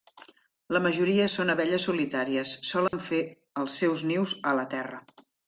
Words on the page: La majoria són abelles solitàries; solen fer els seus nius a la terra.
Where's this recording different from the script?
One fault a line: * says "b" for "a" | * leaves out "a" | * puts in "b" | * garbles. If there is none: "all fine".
all fine